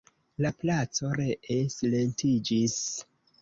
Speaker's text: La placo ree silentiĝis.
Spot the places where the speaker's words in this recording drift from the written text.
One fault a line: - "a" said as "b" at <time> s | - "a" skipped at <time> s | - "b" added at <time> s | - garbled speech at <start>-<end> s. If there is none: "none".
none